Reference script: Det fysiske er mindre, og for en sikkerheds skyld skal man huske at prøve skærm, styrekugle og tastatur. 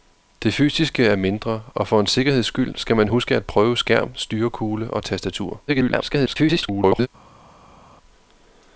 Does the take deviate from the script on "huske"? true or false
false